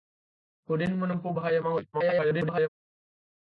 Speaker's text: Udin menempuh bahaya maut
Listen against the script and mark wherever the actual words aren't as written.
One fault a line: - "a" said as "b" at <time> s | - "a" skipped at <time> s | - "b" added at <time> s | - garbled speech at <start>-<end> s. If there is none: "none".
- garbled speech at 1.9-2.7 s